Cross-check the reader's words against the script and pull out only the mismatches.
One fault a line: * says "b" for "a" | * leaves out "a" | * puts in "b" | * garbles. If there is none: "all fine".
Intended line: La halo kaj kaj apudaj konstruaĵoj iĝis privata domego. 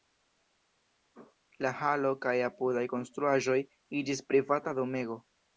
* leaves out "kaj"